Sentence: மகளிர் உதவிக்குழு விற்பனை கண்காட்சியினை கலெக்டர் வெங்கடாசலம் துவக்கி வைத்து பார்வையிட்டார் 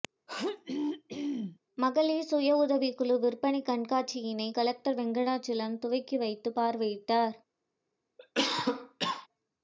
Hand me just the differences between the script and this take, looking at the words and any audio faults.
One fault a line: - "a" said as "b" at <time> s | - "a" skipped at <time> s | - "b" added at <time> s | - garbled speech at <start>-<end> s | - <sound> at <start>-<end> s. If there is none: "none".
- throat clearing at 0.3-1.6 s
- "சுய" added at 2.3 s
- cough at 8.2-9.3 s